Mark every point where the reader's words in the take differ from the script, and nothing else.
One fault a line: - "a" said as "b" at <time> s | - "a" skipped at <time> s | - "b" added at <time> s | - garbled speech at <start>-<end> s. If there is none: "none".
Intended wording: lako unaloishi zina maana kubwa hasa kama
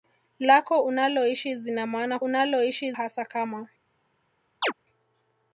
- "kubwa" said as "unaloishi" at 2.2 s